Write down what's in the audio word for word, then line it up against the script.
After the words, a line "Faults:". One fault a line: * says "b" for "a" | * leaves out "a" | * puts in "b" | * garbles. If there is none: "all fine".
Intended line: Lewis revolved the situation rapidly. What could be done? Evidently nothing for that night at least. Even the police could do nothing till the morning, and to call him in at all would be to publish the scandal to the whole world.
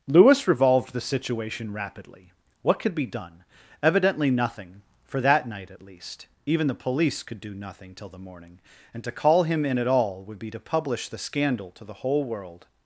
Lewis revolved the situation rapidly. What could be done? Evidently nothing for that night at least. Even the police could do nothing till the morning, and to call him in at all would be to publish the scandal to the whole world.
Faults:
all fine